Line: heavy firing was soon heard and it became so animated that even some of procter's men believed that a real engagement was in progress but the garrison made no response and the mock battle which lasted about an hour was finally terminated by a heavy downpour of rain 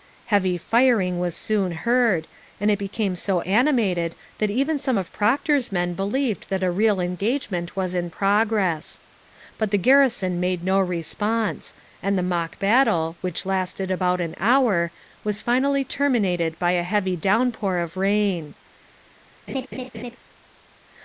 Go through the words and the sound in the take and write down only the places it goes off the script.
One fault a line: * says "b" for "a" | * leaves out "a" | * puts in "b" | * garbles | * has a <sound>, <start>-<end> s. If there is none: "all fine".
* has a laugh, 19.5-20.2 s